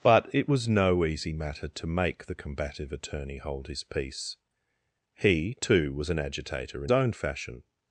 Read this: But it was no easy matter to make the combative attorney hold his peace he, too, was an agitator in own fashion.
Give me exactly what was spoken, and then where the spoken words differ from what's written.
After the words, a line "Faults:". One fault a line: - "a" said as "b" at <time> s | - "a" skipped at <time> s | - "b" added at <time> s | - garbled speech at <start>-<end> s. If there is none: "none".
But it was no easy matter to make the combative attorney hold his peace he, too, was an agitator in own fashion.
Faults:
none